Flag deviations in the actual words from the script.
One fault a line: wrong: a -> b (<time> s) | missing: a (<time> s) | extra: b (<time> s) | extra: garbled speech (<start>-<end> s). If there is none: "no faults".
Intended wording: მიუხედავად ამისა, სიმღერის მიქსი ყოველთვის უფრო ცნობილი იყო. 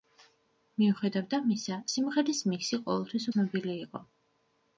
missing: უფრო (3.3 s)